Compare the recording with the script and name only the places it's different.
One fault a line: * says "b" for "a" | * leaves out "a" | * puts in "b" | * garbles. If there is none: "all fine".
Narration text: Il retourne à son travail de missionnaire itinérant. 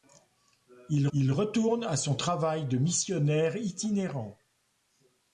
* puts in "il"